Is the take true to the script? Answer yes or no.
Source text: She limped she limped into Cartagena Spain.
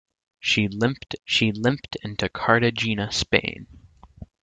yes